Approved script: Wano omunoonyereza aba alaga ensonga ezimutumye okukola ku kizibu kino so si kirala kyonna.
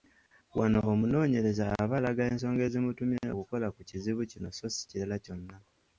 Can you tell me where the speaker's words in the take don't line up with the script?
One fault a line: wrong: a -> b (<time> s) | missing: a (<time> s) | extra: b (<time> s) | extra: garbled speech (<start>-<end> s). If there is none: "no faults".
no faults